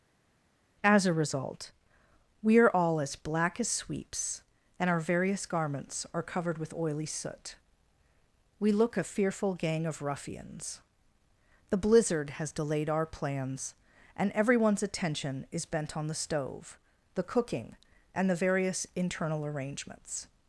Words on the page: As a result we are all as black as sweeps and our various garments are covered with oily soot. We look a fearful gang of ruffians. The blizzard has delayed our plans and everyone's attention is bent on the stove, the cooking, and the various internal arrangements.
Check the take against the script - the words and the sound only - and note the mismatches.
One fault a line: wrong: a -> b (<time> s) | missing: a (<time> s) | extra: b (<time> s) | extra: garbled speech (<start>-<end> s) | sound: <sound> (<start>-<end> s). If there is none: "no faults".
no faults